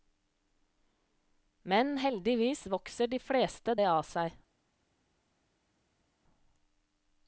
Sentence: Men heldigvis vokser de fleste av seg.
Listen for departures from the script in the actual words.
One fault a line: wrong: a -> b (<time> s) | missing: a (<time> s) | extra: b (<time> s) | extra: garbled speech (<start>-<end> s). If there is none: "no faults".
extra: det (3.7 s)